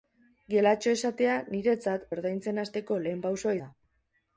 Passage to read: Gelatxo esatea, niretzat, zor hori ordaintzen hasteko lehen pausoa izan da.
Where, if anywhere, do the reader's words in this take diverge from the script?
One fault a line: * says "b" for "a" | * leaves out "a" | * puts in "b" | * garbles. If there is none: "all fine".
* leaves out "zor hori"
* leaves out "izan"